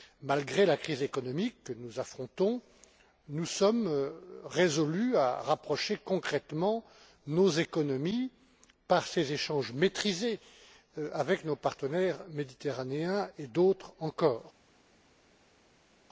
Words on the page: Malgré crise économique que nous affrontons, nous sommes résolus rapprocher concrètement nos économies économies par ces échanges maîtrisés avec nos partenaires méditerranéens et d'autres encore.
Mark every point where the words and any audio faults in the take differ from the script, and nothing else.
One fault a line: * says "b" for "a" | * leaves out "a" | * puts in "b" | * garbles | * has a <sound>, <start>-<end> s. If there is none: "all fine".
* puts in "la"
* puts in "à"
* leaves out "économies"